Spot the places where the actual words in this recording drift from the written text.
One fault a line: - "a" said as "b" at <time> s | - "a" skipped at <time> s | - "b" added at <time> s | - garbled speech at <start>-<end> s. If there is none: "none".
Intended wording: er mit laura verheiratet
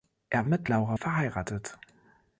none